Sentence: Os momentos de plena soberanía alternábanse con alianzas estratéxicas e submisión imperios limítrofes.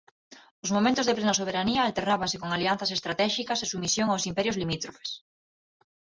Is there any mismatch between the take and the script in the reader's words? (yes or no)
yes